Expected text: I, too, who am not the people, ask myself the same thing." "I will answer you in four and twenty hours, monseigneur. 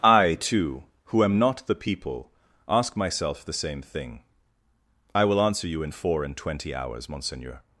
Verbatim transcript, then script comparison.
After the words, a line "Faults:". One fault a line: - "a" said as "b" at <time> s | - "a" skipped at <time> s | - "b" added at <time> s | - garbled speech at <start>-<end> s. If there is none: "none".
I, too, who am not the people, ask myself the same thing." "I will answer you in four and twenty hours, monseigneur.
Faults:
none